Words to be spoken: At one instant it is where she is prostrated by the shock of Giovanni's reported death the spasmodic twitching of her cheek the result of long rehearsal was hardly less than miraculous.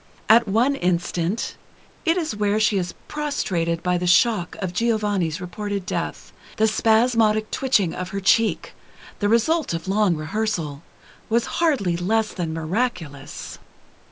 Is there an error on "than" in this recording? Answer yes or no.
no